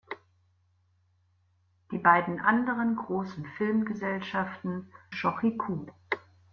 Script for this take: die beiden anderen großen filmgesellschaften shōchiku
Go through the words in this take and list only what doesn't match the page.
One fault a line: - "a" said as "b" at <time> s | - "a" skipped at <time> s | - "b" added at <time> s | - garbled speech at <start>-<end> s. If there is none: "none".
none